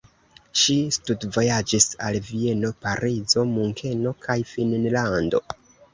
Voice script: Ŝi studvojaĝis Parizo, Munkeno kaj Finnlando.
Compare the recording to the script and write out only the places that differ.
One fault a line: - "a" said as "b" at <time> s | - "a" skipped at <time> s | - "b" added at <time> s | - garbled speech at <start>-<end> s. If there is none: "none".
- "al Vieno" added at 2.1 s